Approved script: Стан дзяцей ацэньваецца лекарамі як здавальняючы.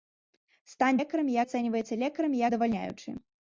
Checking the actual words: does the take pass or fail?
fail